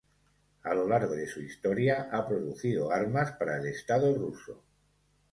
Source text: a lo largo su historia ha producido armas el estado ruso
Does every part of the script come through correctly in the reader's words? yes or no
no